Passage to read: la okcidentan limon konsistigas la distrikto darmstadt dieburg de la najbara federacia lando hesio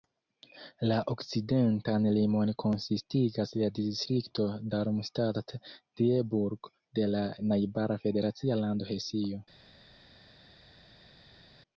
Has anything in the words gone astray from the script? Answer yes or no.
no